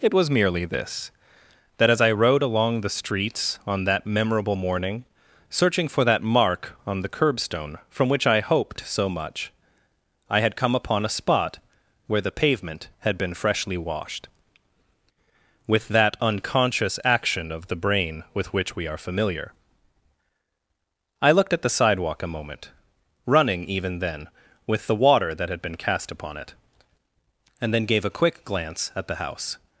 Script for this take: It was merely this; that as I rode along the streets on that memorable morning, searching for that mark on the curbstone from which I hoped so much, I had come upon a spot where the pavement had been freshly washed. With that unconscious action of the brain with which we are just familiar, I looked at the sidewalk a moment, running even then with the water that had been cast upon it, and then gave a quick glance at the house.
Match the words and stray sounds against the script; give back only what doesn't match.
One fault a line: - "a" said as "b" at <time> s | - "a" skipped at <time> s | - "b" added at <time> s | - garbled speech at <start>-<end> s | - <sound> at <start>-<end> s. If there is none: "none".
- "just" skipped at 19.0 s